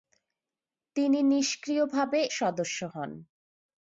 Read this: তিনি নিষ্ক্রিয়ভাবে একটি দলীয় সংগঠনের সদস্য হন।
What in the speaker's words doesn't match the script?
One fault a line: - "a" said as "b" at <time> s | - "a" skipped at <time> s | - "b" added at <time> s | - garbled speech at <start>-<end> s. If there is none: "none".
- "একটি দলীয় সংগঠনের" skipped at 2.2 s